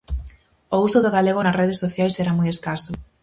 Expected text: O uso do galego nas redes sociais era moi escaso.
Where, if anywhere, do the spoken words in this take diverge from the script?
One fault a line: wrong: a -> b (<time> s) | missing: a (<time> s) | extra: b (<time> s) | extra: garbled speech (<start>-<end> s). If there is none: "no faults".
no faults